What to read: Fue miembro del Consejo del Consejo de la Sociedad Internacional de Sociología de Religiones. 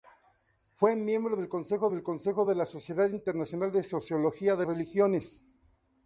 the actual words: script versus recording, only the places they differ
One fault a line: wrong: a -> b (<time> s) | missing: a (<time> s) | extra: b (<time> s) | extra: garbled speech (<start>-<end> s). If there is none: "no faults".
no faults